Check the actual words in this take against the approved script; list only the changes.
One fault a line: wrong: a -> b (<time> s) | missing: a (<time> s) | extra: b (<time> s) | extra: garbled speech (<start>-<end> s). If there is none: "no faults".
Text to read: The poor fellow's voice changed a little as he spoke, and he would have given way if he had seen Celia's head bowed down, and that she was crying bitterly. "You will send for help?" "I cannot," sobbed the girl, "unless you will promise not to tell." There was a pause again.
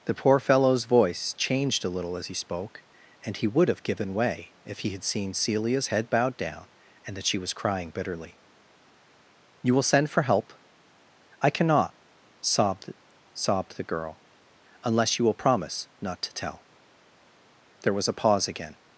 extra: sobbed (13.3 s)